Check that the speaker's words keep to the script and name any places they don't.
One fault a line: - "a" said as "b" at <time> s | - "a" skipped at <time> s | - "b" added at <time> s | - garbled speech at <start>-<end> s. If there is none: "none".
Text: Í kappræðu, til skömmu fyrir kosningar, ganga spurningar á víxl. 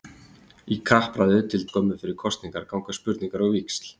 none